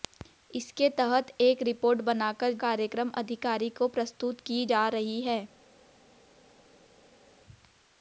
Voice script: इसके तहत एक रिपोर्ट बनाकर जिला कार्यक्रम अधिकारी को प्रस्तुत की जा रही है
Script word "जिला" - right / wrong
wrong